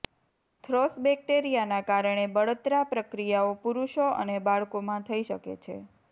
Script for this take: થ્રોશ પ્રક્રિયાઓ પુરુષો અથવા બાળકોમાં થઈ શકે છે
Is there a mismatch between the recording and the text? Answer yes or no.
yes